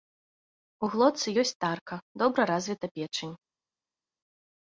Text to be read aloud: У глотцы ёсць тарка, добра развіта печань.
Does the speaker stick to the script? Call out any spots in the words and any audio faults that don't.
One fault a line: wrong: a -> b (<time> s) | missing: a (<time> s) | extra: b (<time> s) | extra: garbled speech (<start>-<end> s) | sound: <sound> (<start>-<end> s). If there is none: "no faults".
no faults